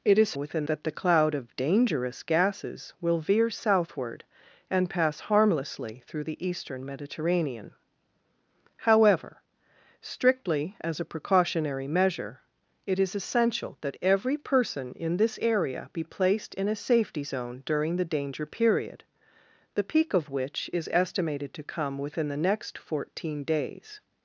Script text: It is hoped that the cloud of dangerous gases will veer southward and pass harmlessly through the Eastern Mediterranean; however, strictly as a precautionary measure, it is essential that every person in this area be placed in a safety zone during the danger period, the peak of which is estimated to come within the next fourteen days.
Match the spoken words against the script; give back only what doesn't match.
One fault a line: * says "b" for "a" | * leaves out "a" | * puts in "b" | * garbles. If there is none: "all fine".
* says "within" for "hoped"